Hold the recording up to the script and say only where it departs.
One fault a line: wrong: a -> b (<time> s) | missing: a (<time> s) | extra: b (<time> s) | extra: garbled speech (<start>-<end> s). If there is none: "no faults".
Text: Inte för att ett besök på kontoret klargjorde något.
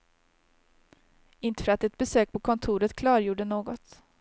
no faults